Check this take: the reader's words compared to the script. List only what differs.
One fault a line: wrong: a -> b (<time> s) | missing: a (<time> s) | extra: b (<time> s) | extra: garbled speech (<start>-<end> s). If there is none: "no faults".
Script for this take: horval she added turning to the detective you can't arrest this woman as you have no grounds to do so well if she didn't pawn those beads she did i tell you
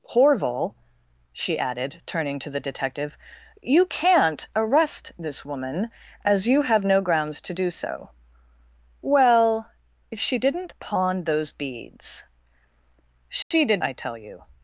no faults